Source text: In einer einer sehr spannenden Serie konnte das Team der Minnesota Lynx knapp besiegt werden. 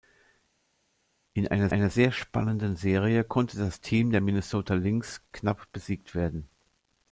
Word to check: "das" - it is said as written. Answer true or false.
true